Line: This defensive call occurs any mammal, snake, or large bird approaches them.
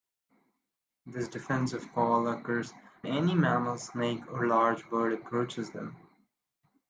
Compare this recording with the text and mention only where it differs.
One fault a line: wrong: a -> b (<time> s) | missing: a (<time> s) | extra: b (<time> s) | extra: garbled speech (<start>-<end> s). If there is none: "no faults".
no faults